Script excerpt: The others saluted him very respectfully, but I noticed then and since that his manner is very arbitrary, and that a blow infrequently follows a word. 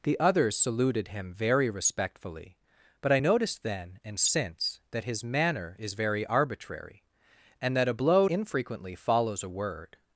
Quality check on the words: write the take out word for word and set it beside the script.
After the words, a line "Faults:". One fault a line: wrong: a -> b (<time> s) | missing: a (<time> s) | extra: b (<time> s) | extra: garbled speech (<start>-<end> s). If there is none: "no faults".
The others saluted him very respectfully, but I noticed then and since that his manner is very arbitrary, and that a blow infrequently follows a word.
Faults:
no faults